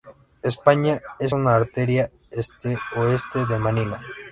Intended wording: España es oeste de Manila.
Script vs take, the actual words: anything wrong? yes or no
yes